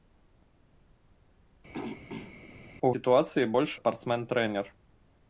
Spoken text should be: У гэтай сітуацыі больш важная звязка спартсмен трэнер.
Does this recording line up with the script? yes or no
no